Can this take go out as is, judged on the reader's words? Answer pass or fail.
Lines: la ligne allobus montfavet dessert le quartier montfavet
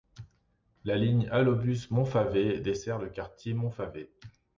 pass